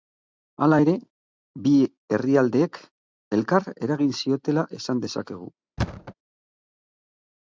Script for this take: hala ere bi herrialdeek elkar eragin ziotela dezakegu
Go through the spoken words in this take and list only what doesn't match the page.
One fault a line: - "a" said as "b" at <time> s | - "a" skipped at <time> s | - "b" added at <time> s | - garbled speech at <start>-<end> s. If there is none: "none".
- "esan" added at 4.8 s